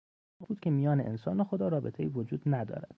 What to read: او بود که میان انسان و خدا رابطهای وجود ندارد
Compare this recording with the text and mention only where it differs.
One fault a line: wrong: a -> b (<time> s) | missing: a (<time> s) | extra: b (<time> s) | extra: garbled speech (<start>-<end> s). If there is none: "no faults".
no faults